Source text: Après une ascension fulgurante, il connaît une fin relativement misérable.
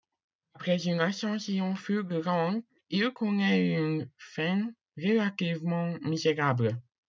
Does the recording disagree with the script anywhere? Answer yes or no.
no